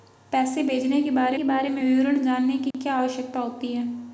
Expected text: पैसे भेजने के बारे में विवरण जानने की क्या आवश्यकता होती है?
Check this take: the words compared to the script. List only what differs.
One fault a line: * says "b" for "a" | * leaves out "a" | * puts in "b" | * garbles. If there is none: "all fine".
* puts in "के बारे"